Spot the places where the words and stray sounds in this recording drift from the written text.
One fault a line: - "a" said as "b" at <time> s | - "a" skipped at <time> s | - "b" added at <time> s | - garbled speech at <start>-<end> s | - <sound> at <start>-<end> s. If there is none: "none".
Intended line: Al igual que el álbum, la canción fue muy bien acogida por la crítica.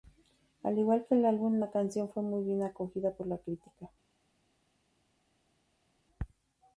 none